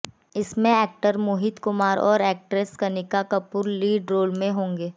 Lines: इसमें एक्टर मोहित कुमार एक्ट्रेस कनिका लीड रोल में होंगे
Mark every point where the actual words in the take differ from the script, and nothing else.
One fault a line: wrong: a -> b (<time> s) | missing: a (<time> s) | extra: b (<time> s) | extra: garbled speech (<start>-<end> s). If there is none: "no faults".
extra: और (2.0 s)
extra: कपूर (3.3 s)